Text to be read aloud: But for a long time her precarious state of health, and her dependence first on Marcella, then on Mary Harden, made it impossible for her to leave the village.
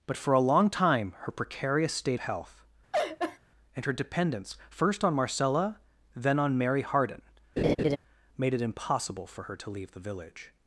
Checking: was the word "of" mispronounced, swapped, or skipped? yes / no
yes